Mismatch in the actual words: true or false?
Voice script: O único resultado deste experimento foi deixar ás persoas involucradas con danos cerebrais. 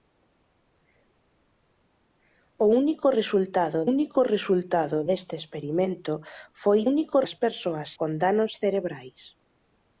true